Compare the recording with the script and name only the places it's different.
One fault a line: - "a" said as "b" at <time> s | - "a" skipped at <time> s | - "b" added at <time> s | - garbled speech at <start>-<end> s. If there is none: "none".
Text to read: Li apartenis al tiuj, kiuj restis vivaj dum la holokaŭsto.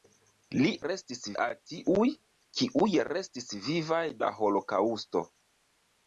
- "apartenis" said as "restis" at 0.8 s
- "dum" skipped at 4.0 s